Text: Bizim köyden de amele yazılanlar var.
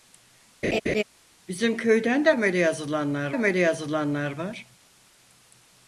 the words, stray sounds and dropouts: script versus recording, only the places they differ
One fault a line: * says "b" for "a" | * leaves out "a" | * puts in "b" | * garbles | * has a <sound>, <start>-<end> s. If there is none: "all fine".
* has a laugh, 0.6-1.0 s
* puts in "amele yazılanlar"